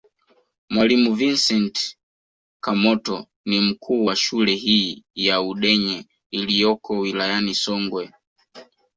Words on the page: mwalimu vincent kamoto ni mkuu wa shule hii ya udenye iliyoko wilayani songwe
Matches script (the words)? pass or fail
pass